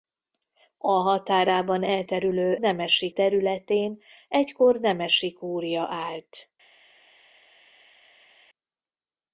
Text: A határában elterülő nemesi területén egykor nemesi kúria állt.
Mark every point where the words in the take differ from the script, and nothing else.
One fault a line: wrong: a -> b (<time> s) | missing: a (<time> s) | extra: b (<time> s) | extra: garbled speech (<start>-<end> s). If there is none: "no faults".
no faults